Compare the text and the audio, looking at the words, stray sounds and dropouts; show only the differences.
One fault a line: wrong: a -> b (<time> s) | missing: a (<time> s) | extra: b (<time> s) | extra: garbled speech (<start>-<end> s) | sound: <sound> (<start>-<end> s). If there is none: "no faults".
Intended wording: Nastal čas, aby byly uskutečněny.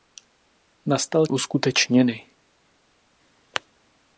missing: čas aby byly (1.3 s)